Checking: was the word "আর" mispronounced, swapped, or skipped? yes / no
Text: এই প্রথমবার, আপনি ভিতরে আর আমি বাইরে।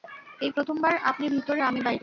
yes